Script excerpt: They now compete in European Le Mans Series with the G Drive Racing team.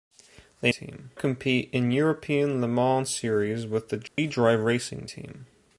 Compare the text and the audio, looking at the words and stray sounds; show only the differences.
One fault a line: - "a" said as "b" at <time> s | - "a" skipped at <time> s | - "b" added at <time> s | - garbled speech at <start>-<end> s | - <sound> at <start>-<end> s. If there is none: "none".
- "now" said as "team" at 0.7 s
- dropout at 4.1-4.2 s